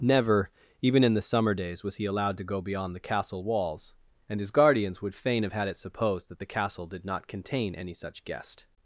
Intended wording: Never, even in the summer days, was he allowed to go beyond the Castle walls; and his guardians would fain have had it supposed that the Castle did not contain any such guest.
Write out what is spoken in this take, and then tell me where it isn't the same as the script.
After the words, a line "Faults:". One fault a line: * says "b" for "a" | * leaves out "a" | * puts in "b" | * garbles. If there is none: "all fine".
Never, even in the summer days, was he allowed to go beyond the Castle walls; and his guardians would fain have had it supposed that the Castle did not contain any such guest.
Faults:
all fine